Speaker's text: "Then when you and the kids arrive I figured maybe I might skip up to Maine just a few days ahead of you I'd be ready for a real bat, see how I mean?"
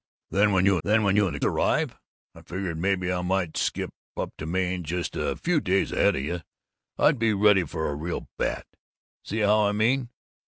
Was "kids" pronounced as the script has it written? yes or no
no